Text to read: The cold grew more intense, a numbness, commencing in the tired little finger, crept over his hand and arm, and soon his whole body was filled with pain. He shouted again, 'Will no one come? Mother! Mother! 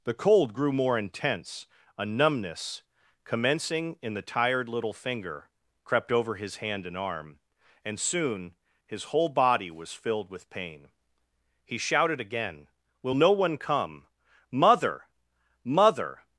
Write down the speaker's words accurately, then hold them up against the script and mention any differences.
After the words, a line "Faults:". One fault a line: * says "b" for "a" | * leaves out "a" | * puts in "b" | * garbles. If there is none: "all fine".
The cold grew more intense, a numbness, commencing in the tired little finger, crept over his hand and arm, and soon his whole body was filled with pain. He shouted again, 'Will no one come? Mother! Mother!
Faults:
all fine